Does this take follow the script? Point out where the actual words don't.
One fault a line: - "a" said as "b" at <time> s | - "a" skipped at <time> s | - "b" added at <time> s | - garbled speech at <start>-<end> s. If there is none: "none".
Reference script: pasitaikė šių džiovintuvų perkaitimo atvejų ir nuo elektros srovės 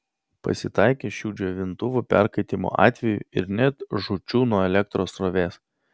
- "net žūčių" added at 3.6 s